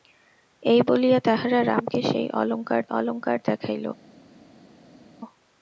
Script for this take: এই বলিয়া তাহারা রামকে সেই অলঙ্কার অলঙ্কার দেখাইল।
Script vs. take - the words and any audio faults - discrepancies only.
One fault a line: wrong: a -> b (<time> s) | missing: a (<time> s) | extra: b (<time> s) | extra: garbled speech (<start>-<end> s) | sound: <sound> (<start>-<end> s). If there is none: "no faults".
no faults